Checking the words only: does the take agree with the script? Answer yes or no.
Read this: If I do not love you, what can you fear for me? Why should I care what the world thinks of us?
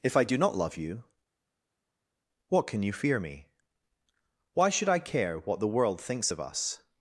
no